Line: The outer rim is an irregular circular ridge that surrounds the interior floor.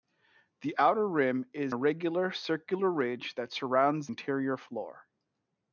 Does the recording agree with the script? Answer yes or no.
no